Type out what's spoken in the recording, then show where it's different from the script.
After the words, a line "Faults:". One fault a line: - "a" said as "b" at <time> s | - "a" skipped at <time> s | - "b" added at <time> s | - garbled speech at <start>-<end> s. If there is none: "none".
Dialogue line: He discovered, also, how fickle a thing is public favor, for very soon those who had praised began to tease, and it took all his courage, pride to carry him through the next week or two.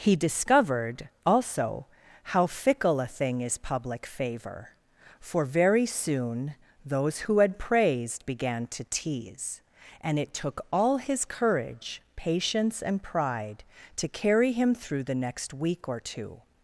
He discovered, also, how fickle a thing is public favor, for very soon those who had praised began to tease, and it took all his courage, patience, and pride to carry him through the next week or two.
Faults:
- "patience and" added at 12.2 s